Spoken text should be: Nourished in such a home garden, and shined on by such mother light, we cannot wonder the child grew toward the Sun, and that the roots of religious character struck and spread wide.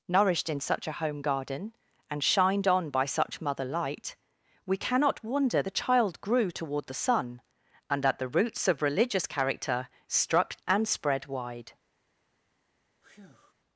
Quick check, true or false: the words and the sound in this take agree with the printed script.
false